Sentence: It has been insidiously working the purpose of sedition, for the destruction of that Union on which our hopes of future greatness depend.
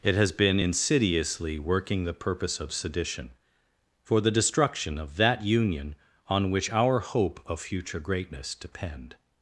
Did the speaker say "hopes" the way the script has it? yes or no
no